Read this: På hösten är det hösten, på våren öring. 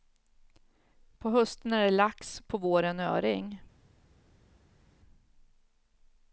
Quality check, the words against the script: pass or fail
fail